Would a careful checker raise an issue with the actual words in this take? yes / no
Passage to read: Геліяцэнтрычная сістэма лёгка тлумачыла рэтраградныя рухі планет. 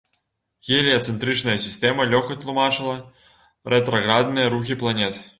no